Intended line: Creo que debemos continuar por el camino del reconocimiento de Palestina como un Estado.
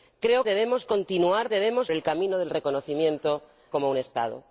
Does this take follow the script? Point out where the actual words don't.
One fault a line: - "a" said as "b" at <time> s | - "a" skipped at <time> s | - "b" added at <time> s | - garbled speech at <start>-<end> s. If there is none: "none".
- "que" skipped at 0.5 s
- "por" said as "debemos" at 1.5 s
- "de Palestina" skipped at 3.4 s